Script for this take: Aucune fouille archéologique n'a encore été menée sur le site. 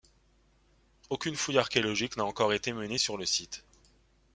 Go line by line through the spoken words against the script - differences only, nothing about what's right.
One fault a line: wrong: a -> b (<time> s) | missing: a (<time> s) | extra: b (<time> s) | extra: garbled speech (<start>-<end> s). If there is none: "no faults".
no faults